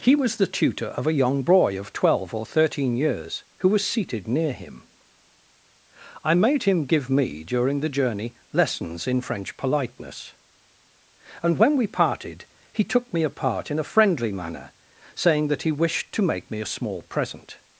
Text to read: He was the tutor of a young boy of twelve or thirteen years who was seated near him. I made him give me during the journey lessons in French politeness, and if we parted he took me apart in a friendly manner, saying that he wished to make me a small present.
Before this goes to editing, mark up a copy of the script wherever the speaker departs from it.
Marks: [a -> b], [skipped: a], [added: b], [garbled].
He was the tutor of a young boy of twelve or thirteen years who was seated near him. I made him give me during the journey lessons in French politeness, and [if -> when] we parted he took me apart in a friendly manner, saying that he wished to make me a small present.